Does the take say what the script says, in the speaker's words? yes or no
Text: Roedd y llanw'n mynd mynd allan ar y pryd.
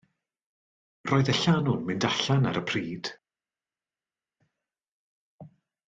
no